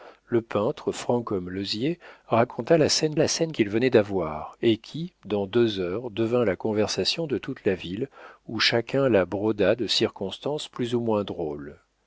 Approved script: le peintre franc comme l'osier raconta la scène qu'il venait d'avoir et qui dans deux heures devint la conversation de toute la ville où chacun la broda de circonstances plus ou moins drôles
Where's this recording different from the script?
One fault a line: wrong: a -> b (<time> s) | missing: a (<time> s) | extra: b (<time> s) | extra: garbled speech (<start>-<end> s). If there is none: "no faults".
extra: la scène (3.2 s)